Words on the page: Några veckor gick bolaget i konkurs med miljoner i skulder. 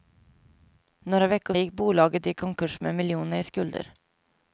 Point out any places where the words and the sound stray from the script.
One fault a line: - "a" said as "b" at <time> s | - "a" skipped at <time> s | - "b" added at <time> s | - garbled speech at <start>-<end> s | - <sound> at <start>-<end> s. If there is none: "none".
none